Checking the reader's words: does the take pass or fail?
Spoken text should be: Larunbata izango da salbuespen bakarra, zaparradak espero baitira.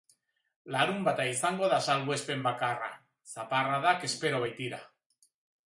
pass